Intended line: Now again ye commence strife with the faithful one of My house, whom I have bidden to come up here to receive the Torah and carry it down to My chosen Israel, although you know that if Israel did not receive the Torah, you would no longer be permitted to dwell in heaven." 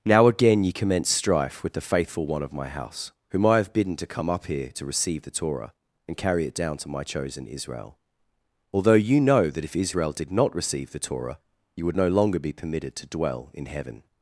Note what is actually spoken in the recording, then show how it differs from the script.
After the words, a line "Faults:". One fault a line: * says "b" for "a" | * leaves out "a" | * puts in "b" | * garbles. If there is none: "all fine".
Now again ye commence strife with the faithful one of My house, whom I have bidden to come up here to receive the Torah and carry it down to My chosen Israel, although you know that if Israel did not receive the Torah, you would no longer be permitted to dwell in heaven."
Faults:
all fine